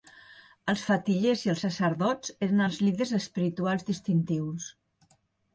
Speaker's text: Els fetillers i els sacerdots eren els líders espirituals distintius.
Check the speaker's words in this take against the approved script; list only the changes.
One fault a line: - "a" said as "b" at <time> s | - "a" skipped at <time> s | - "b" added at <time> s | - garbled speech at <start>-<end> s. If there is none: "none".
none